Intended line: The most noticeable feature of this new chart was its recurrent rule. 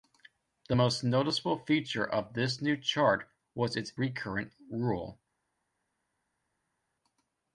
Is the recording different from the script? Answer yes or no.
no